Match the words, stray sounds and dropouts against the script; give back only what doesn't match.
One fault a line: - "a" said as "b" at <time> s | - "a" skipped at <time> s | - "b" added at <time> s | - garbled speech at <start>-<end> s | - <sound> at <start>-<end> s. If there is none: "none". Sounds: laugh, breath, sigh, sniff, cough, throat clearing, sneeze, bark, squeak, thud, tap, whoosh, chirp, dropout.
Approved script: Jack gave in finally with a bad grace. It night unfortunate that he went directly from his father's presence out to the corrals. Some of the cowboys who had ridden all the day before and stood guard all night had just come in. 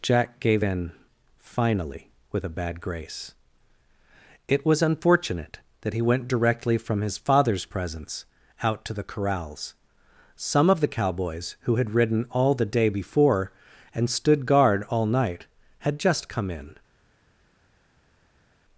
- "night" said as "was" at 4.6 s